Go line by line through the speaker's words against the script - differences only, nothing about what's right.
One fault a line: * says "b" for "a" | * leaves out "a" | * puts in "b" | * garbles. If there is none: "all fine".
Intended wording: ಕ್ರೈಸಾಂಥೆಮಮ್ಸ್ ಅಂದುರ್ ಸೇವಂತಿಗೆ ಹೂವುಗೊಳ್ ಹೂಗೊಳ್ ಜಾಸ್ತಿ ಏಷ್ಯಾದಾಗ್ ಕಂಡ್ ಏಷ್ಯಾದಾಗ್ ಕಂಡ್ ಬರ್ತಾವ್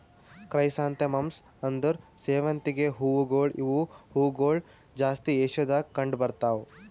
* puts in "ಇವು"
* leaves out "ಏಷ್ಯಾದಾಗ್ ಕಂಡ್"